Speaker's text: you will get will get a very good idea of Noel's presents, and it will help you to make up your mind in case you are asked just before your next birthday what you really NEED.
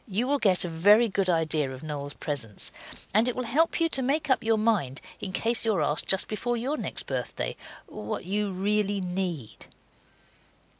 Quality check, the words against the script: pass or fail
fail